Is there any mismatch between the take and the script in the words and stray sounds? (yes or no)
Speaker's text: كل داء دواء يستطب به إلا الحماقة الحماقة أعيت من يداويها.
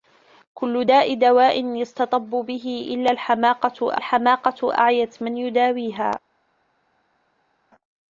no